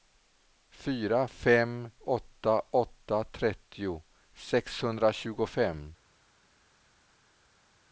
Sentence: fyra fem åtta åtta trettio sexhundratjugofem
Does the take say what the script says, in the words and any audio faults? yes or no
yes